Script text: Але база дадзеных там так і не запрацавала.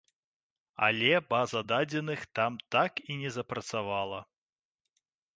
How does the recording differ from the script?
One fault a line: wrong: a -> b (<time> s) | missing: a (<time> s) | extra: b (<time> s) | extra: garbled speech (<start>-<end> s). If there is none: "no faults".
no faults